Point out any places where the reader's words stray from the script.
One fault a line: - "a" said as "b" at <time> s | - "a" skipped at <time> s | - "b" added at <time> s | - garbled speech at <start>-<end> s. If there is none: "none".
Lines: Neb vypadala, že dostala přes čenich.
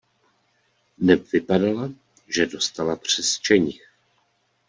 none